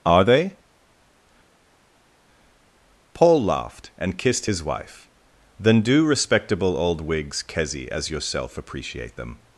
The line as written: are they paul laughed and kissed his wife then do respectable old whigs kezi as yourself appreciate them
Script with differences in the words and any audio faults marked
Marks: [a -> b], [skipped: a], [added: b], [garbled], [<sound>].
are they paul laughed and kissed his wife then do respectable old whigs kezi as yourself appreciate them